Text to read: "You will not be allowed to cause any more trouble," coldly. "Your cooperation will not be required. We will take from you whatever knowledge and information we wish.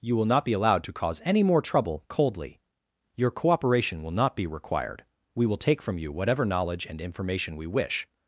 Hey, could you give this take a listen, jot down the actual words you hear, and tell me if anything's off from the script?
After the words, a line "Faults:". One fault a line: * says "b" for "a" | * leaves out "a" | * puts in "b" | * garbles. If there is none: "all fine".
"You will not be allowed to cause any more trouble," coldly. "Your cooperation will not be required. We will take from you whatever knowledge and information we wish.
Faults:
all fine